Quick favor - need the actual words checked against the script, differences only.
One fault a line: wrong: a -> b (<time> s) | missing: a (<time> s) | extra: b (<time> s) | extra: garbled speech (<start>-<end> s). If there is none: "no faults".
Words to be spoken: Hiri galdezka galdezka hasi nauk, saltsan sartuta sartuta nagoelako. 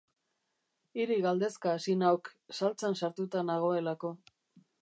missing: galdezka (1.7 s)
missing: sartuta (3.5 s)